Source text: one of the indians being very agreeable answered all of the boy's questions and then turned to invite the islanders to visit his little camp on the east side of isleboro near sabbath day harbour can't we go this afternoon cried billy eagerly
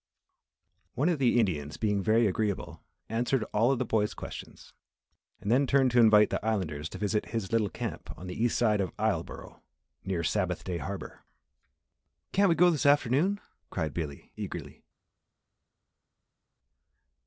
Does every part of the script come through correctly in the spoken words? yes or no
yes